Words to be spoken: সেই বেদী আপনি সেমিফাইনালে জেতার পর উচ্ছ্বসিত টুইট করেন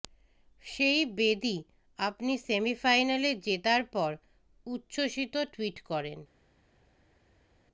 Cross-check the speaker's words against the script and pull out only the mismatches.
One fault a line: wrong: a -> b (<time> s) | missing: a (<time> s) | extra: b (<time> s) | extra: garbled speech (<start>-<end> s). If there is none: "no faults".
no faults